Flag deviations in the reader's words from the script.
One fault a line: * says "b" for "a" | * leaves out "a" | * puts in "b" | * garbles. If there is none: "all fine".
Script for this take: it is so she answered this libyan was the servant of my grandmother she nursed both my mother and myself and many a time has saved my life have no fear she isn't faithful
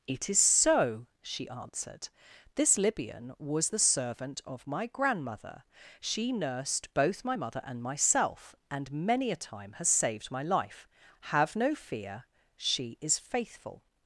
* says "is" for "isn't"